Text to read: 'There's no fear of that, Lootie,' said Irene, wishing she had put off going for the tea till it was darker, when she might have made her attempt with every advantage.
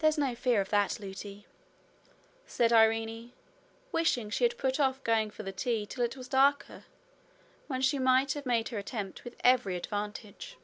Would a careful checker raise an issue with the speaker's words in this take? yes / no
no